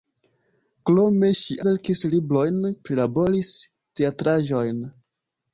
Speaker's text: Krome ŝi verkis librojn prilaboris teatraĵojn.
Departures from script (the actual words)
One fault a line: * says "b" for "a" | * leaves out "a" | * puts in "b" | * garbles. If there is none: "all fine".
all fine